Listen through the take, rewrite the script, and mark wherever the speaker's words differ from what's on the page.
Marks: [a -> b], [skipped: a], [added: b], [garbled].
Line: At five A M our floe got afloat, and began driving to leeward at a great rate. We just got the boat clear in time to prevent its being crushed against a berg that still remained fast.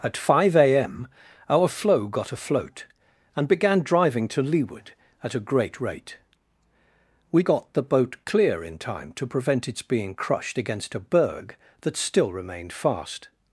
At five A M our floe got afloat, and began driving to leeward at a great rate. We [skipped: just] got the boat clear in time to prevent its being crushed against a berg that still remained fast.